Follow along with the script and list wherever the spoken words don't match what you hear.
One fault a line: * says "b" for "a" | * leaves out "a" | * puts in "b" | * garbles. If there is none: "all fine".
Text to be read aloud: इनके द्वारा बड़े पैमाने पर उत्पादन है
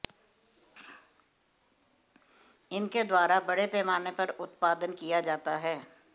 * puts in "किया जाता"